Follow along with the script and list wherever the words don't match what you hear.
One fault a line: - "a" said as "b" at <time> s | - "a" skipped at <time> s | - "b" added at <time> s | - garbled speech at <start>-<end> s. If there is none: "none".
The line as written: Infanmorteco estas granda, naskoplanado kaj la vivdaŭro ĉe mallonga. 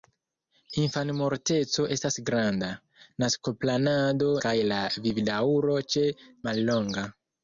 none